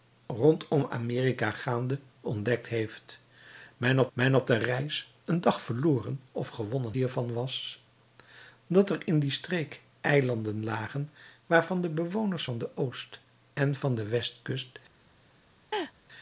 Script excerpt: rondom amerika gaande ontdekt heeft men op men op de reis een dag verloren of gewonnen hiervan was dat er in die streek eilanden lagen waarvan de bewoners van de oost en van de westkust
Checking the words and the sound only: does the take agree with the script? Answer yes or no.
no